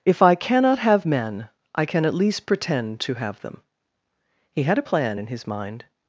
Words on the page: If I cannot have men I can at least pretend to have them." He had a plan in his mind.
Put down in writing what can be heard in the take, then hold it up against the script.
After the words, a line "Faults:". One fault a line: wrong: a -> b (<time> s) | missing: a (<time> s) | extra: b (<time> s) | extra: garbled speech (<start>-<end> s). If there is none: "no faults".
If I cannot have men I can at least pretend to have them." He had a plan in his mind.
Faults:
no faults